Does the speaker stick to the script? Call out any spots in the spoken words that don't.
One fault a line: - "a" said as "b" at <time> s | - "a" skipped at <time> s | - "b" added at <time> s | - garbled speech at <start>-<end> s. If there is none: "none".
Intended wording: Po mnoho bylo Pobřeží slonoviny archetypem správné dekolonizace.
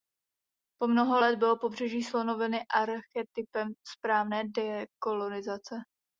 - "let" added at 1.2 s